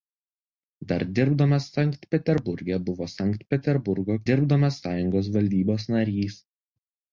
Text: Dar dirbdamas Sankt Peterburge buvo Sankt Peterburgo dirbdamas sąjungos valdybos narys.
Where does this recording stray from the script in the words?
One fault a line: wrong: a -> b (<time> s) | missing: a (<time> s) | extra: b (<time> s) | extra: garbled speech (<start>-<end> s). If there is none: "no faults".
no faults